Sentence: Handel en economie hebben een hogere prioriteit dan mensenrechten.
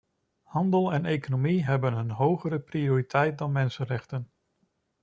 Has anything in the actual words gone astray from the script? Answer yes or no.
no